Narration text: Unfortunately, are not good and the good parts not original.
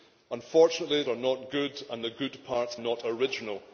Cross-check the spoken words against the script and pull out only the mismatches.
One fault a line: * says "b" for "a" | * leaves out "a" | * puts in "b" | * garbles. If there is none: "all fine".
all fine